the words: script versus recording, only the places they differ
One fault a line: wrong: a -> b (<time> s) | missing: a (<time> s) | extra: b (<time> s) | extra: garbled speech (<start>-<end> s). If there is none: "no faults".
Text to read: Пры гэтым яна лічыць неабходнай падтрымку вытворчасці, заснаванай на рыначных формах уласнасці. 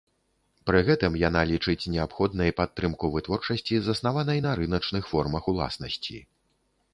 no faults